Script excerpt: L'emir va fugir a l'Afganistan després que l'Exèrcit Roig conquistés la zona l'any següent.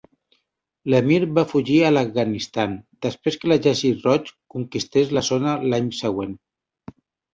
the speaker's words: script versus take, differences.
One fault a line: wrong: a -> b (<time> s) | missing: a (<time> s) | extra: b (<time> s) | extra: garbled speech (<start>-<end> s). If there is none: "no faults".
no faults